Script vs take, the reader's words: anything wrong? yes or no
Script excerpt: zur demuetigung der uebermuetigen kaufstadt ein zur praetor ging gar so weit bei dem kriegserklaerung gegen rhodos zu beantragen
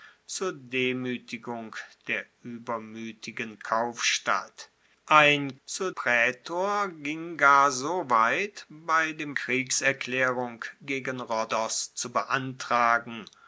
no